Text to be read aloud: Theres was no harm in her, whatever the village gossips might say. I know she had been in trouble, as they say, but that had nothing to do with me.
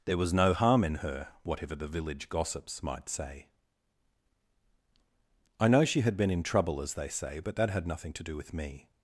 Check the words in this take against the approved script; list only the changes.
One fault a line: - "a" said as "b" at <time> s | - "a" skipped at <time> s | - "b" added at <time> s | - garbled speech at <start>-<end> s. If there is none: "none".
- "Theres" said as "There" at 0.1 s